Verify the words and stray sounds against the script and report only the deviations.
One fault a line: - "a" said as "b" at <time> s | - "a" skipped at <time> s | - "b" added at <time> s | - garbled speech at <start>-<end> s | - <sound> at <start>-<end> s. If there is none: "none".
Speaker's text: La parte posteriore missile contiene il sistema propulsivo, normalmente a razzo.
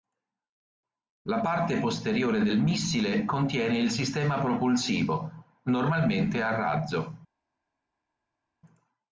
- "del" added at 2.4 s